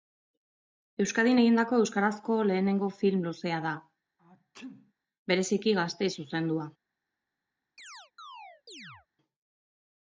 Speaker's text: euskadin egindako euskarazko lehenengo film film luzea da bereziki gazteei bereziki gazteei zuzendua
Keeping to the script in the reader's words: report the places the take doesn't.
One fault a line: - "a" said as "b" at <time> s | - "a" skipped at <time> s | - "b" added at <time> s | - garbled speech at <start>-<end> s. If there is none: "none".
- "film" skipped at 3.3 s
- "bereziki gazteei" skipped at 6.1 s